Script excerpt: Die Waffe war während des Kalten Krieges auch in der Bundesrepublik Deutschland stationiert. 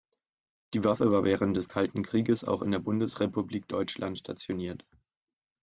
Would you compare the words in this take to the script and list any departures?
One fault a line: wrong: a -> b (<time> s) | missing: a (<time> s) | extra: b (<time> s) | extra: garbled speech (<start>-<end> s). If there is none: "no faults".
no faults